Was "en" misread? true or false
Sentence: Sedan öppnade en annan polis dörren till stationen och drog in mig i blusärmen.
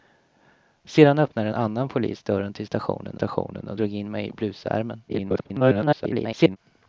true